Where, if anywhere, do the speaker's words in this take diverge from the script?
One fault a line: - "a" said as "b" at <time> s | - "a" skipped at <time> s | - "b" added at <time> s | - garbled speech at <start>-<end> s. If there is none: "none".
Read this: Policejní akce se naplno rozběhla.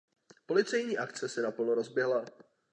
none